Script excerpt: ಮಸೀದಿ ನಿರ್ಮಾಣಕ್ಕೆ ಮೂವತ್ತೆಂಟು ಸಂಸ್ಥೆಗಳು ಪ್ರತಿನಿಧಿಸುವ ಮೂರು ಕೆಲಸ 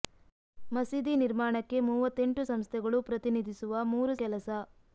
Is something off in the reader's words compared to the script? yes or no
no